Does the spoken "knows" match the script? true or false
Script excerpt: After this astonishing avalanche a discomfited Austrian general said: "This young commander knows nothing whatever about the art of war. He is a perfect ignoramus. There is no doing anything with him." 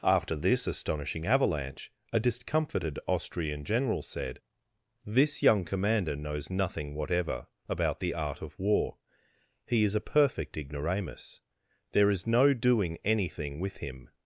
true